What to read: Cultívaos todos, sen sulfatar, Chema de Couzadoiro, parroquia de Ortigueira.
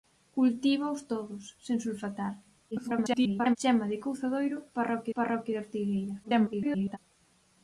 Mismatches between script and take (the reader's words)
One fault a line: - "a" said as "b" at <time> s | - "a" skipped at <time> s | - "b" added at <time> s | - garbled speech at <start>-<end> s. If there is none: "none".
- garbled speech at 2.7-3.6 s
- "parroquia" added at 5.2 s
- garbled speech at 6.2-7.0 s